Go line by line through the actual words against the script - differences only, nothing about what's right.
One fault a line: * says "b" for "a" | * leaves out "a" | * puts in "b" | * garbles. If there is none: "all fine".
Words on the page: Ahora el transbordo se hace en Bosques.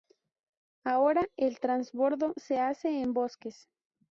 all fine